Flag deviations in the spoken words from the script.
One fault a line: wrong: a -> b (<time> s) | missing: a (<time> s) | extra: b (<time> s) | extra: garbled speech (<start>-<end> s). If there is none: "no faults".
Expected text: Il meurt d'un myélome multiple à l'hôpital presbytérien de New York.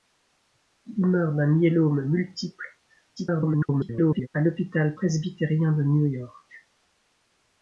extra: garbled speech (3.2-4.3 s)